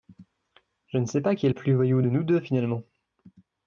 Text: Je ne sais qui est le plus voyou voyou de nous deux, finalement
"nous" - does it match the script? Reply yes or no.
yes